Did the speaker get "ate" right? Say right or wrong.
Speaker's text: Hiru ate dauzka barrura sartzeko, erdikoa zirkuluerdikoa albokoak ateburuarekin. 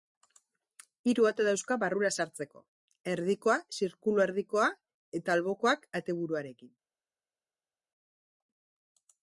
right